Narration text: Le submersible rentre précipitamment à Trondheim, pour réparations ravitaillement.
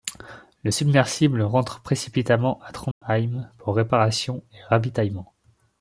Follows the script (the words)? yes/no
no